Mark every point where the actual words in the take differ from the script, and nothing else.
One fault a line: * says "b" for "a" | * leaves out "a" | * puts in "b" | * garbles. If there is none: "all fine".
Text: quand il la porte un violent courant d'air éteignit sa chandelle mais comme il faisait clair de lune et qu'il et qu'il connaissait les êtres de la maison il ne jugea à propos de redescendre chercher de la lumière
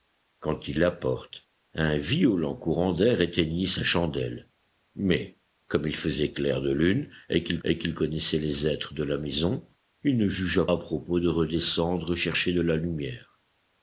all fine